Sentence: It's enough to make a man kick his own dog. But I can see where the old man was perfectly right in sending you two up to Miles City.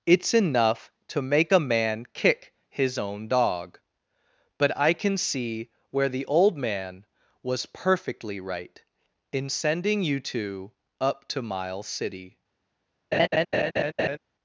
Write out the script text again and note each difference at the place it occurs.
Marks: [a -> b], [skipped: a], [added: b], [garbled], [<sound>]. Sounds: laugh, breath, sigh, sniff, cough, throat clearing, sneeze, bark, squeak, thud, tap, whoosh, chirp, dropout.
It's enough to make a man kick his own dog. But I can see where the old man was perfectly right in sending you two up to Miles City. [laugh]